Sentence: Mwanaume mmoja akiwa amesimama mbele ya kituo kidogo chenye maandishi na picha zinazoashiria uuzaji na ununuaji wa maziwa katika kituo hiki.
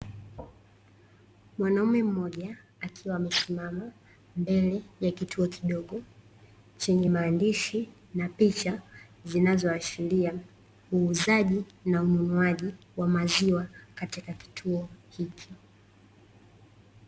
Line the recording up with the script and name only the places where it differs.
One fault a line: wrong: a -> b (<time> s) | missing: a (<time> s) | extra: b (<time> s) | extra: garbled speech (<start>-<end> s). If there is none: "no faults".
no faults